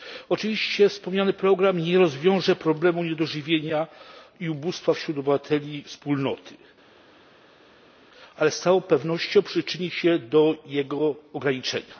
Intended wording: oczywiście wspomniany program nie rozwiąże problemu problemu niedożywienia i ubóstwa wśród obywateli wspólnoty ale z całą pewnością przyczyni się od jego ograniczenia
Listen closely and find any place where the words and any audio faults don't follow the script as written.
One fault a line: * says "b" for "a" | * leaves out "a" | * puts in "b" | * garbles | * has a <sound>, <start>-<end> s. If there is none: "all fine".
* leaves out "problemu"
* says "do" for "od"